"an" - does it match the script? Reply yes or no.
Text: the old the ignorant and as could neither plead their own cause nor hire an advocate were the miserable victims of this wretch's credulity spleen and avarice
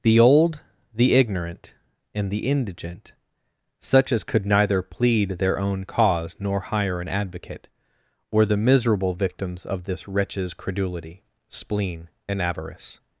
yes